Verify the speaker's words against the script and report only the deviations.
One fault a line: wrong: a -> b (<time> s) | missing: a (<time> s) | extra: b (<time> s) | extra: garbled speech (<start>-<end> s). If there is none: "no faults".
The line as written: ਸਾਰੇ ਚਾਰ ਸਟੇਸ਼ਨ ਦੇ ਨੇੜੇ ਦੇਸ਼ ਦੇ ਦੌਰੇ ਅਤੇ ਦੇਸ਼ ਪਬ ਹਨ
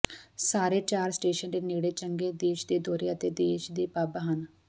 extra: ਚੰਗੇ (1.9 s)
extra: ਦੇ (3.7 s)